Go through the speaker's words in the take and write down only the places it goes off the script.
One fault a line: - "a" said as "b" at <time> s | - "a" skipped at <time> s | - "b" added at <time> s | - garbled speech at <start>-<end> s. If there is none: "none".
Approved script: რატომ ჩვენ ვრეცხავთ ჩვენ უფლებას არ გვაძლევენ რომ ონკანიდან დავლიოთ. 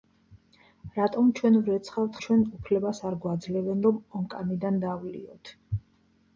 none